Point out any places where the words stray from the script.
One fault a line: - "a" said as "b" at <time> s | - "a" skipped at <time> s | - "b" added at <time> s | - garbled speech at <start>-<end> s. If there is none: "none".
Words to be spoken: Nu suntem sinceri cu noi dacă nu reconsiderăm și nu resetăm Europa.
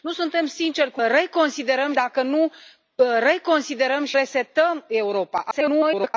- "noi" said as "reconsiderăm" at 1.1 s
- "nu" skipped at 4.2 s
- garbled speech at 5.5-6.1 s